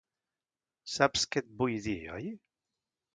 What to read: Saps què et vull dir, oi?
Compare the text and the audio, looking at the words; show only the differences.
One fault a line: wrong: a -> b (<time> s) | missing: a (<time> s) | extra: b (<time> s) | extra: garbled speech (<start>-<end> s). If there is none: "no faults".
no faults